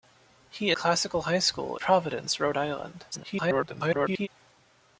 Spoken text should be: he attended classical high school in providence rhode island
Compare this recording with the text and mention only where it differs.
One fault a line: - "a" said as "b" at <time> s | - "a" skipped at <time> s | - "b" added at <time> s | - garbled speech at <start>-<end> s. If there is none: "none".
- "attended" skipped at 0.7 s
- "in" skipped at 1.8 s
- garbled speech at 3.1-4.3 s